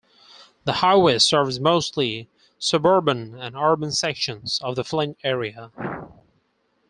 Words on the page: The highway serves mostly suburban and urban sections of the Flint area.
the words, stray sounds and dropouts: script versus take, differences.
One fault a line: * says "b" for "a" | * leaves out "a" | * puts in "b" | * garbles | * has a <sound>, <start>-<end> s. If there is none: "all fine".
all fine